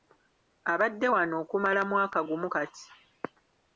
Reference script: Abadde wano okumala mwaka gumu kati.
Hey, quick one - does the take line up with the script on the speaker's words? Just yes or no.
yes